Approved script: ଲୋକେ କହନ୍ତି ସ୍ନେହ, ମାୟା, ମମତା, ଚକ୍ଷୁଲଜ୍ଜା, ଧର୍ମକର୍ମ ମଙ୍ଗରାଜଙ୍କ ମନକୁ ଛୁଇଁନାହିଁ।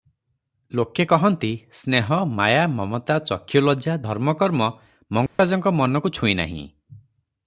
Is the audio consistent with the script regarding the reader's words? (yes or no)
yes